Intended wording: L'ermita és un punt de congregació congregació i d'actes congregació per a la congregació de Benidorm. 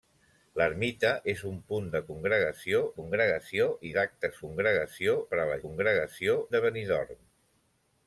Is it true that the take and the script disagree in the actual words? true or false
false